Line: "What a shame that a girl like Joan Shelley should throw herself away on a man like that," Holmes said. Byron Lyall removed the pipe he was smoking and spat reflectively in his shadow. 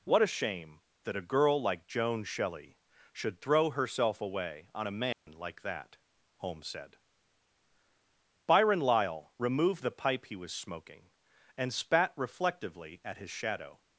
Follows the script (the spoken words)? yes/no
no